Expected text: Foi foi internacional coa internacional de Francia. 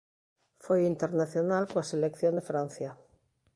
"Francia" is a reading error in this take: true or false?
false